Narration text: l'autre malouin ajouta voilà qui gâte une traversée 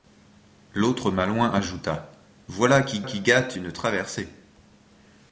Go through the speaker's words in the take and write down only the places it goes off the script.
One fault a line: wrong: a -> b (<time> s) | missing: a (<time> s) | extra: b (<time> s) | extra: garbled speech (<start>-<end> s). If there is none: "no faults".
extra: qui (3.0 s)